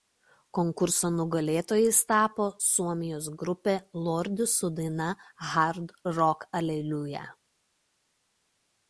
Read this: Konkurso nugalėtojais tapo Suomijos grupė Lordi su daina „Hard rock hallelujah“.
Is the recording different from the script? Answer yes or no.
no